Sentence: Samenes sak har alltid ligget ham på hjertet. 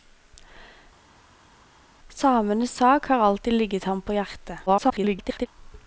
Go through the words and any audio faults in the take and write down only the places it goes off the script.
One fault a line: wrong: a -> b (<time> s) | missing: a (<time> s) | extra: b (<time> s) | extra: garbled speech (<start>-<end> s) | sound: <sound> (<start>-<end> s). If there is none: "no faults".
extra: garbled speech (4.7-5.5 s)